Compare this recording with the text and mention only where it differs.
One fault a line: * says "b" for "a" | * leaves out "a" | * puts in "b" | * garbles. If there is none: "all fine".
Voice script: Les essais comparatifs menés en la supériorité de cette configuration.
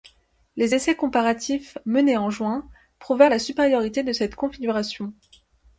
* puts in "juin prouvèrent"